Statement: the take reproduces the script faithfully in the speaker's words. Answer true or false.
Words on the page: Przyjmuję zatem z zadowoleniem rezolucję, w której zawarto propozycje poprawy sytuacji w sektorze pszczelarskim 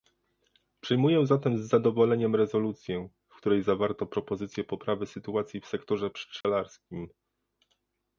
true